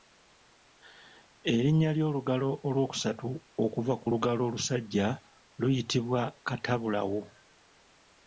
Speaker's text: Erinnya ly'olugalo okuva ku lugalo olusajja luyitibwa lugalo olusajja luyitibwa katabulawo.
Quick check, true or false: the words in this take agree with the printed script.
false